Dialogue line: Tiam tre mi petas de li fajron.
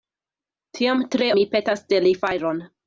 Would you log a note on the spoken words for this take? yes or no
no